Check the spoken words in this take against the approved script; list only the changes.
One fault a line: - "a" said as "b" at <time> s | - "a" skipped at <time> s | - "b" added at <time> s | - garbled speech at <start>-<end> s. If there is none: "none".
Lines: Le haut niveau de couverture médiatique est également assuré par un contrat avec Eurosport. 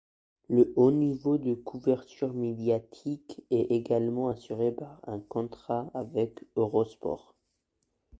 none